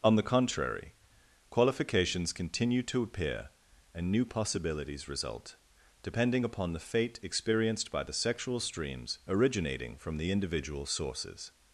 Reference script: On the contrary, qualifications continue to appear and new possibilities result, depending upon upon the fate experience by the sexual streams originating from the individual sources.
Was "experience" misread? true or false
true